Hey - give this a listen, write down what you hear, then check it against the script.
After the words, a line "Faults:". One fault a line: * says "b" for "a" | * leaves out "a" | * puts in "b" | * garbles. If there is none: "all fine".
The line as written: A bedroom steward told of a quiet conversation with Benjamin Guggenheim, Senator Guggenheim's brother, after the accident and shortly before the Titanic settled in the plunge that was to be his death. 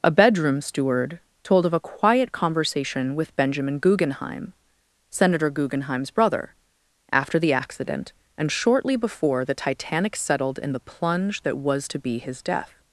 A bedroom steward told of a quiet conversation with Benjamin Guggenheim, Senator Guggenheim's brother, after the accident and shortly before the Titanic settled in the plunge that was to be his death.
Faults:
all fine